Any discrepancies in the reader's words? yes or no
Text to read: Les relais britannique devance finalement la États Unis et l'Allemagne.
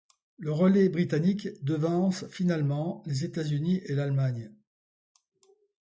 yes